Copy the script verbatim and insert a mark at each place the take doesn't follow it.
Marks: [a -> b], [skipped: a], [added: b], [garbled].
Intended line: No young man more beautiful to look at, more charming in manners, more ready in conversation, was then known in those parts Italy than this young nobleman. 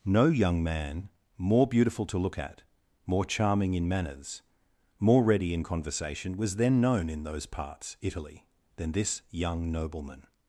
No young man more beautiful to look at, more charming in manners, more ready in conversation, was then known in those parts Italy than this young nobleman.